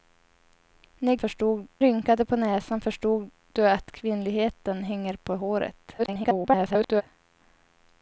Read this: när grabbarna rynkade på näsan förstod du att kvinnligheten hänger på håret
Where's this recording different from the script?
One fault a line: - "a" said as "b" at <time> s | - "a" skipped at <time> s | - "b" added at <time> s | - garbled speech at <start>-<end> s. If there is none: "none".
- "grabbarna" said as "förstod" at 1.2 s
- garbled speech at 6.0-7.0 s